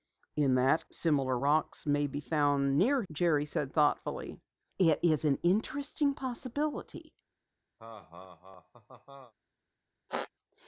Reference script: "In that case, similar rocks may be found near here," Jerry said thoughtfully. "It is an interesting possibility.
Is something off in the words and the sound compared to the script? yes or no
yes